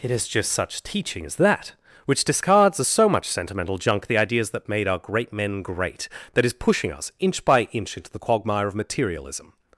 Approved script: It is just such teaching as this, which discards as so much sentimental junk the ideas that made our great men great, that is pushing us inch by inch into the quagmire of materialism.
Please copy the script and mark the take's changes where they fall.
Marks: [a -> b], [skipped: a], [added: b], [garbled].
It is just such teaching as [this, -> that] which discards as so much sentimental junk the ideas that made our great men great, that is pushing us inch by inch into the quagmire of materialism.